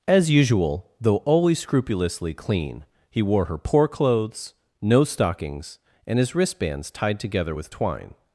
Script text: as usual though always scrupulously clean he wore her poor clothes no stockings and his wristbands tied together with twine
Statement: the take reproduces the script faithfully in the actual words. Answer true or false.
true